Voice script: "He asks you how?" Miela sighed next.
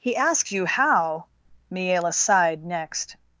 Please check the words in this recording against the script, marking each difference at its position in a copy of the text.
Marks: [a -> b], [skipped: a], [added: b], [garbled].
"He asks you how?" Miela sighed next.